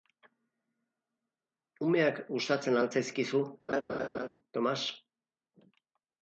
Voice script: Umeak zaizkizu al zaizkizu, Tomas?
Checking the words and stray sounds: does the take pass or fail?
fail